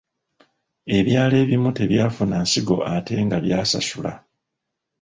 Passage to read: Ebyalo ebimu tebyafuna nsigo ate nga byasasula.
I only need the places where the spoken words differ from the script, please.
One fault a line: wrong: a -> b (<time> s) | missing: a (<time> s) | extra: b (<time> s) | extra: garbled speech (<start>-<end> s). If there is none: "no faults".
no faults